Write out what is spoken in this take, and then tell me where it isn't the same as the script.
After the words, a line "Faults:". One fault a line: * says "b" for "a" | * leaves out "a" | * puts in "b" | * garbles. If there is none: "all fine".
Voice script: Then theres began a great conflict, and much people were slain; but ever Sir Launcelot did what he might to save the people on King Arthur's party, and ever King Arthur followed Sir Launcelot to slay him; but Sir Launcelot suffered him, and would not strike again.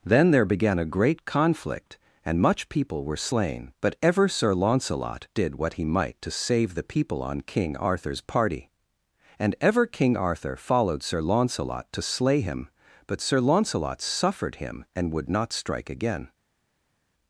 Then there began a great conflict, and much people were slain; but ever Sir Launcelot did what he might to save the people on King Arthur's party, and ever King Arthur followed Sir Launcelot to slay him; but Sir Launcelot suffered him, and would not strike again.
Faults:
* says "there" for "theres"